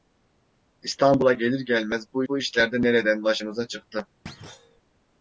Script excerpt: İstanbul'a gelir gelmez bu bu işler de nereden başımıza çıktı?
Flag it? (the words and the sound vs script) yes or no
yes